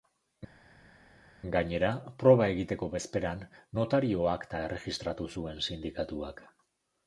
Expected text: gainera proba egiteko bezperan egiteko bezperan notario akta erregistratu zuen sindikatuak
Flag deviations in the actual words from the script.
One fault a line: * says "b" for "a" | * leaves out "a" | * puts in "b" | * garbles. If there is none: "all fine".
* leaves out "egiteko bezperan"